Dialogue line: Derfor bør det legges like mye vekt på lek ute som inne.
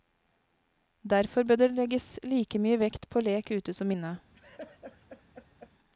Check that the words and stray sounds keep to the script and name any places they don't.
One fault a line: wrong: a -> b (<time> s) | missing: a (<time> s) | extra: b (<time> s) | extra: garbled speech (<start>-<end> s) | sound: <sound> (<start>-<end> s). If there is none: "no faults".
sound: laugh (4.3-5.7 s)